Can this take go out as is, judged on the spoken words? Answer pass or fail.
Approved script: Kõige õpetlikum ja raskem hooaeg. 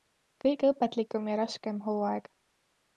pass